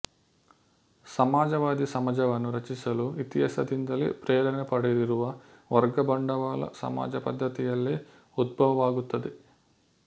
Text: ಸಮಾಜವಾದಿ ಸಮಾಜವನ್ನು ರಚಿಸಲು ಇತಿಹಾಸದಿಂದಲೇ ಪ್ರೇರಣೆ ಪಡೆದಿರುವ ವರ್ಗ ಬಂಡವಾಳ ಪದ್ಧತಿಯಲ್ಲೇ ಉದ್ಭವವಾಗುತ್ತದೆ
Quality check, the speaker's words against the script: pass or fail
fail